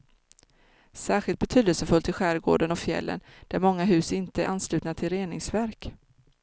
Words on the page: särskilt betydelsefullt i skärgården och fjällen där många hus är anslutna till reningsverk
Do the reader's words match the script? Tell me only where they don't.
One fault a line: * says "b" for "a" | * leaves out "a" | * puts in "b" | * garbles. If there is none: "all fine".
* puts in "inte"